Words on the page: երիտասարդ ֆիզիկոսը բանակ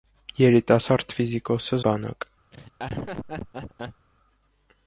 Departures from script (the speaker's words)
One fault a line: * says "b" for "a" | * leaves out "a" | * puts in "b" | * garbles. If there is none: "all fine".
all fine